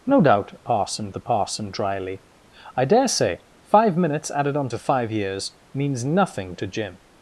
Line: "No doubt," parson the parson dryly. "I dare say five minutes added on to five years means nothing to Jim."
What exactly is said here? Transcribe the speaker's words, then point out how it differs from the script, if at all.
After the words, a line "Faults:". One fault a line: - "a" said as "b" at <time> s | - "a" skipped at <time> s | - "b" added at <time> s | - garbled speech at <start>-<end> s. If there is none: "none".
"No doubt," parson the parson dryly. "I dare say five minutes added on to five years means nothing to Jim."
Faults:
none